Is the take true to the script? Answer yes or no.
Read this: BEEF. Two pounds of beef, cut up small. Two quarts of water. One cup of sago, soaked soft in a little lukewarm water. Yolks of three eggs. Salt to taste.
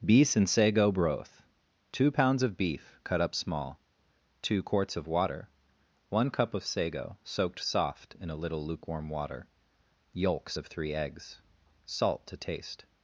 no